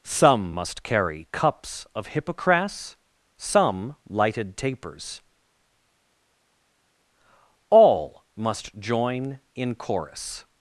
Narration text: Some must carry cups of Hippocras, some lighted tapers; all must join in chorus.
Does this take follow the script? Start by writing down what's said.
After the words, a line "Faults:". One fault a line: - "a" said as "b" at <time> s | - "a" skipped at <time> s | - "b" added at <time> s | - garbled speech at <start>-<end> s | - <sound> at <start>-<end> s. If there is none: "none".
Some must carry cups of Hippocras, some lighted tapers; all must join in chorus.
Faults:
none